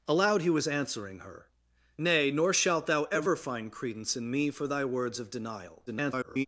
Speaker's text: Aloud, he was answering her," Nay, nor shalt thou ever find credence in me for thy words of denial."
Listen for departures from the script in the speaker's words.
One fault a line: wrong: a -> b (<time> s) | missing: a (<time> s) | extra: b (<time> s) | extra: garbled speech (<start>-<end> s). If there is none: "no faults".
extra: garbled speech (5.9-6.5 s)